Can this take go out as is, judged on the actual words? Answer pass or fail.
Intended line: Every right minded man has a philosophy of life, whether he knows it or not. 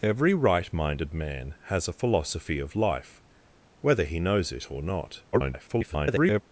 fail